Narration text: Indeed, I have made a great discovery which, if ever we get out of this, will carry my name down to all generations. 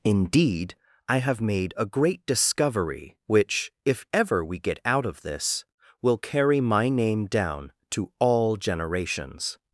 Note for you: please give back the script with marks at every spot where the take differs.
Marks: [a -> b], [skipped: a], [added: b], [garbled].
Indeed, I have made a great discovery which, if ever we get out of this, will carry my name down to all generations.